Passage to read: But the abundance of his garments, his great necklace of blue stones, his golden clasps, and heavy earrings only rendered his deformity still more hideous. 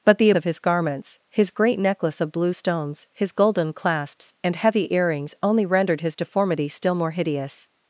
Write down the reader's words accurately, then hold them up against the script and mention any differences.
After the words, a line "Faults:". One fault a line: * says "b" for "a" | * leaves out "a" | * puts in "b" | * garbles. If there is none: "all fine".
But the of his garments, his great necklace of blue stones, his golden clasps, and heavy earrings only rendered his deformity still more hideous.
Faults:
* leaves out "abundance"